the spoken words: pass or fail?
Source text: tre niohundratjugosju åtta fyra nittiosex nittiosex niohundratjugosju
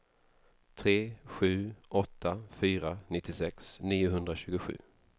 fail